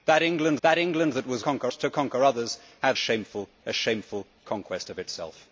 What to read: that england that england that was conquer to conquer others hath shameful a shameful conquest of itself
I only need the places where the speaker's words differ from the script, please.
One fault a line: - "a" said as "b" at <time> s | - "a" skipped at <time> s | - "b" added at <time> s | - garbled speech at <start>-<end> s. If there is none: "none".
none